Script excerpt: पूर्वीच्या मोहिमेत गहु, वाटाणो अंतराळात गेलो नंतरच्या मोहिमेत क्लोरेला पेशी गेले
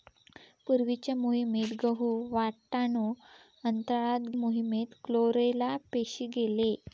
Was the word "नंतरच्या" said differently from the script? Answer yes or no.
yes